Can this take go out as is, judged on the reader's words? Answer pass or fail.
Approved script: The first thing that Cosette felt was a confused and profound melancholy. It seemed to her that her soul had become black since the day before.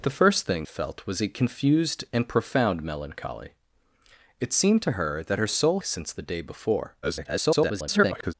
fail